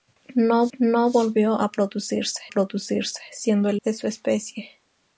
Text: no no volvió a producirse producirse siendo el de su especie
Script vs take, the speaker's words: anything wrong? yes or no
no